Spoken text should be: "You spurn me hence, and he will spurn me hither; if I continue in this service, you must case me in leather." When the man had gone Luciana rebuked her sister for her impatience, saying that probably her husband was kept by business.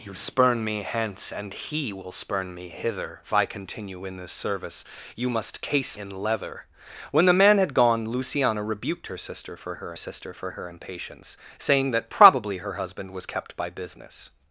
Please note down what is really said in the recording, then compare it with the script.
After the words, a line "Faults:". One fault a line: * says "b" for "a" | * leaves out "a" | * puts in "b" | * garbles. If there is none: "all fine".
"You spurn me hence, and he will spurn me hither; if I continue in this service, you must case in leather." When the man had gone Luciana rebuked her sister for her sister for her impatience, saying that probably her husband was kept by business.
Faults:
* leaves out "me"
* puts in "sister for her"